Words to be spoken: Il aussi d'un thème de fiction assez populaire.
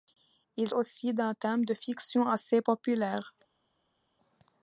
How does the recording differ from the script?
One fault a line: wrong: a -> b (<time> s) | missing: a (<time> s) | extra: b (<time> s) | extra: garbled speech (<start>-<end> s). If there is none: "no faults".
no faults